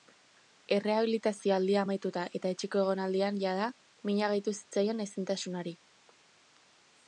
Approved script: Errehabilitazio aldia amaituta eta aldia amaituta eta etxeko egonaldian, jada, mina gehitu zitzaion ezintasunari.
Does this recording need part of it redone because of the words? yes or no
yes